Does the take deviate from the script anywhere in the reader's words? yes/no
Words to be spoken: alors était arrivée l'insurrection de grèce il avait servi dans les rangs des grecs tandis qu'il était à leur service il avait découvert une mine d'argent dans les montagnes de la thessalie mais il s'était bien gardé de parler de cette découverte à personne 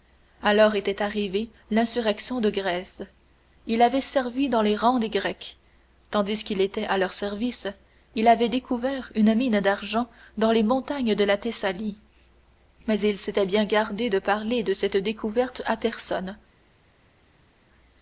no